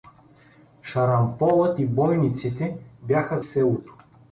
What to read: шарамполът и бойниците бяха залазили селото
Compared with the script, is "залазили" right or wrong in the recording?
wrong